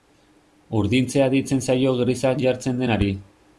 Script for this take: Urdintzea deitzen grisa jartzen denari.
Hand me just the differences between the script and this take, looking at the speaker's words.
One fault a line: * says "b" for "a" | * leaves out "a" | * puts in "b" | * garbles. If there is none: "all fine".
* puts in "zaio"